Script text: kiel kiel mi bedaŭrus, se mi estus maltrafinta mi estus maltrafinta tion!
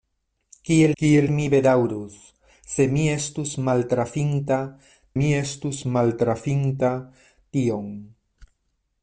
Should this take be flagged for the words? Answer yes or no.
no